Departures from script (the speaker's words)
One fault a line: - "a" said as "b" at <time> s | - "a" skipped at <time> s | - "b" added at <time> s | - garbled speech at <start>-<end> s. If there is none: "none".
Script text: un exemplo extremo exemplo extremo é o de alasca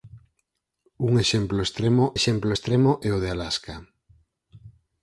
none